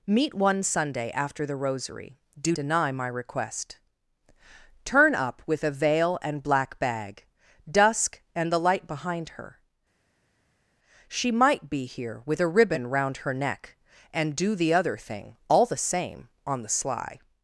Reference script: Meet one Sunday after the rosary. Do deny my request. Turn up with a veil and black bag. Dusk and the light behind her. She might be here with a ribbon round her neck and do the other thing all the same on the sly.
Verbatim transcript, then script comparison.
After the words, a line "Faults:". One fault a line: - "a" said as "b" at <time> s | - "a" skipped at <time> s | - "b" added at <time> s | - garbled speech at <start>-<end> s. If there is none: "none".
Meet one Sunday after the rosary. Do deny my request. Turn up with a veil and black bag. Dusk and the light behind her. She might be here with a ribbon round her neck and do the other thing all the same on the sly.
Faults:
none